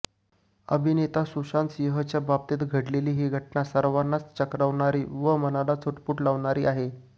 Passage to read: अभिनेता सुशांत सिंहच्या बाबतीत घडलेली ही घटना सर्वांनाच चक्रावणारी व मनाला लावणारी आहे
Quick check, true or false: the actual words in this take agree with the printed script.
false